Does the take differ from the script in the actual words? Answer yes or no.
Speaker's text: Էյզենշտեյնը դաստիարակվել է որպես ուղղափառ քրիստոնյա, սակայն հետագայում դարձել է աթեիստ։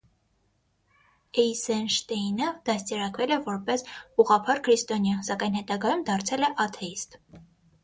no